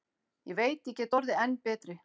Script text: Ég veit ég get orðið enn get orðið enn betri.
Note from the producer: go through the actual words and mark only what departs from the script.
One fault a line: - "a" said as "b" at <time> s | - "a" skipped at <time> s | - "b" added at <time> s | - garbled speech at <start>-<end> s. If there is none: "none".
- "get orðið enn" skipped at 1.6 s